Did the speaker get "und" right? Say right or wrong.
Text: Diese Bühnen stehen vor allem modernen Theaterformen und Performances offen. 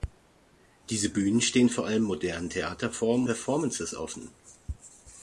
wrong